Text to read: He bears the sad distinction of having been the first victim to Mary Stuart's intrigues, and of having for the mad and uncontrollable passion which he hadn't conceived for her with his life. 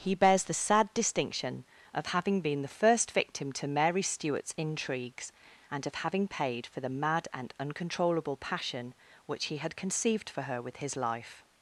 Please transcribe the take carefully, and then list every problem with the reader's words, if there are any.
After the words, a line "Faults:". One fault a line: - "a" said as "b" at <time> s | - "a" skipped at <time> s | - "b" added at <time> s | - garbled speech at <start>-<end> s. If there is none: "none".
He bears the sad distinction of having been the first victim to Mary Stuart's intrigues, and of having paid for the mad and uncontrollable passion which he had conceived for her with his life.
Faults:
- "paid" added at 6.3 s
- "hadn't" said as "had" at 9.6 s